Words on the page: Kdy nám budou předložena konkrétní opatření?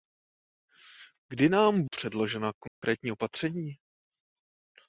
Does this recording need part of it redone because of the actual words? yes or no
yes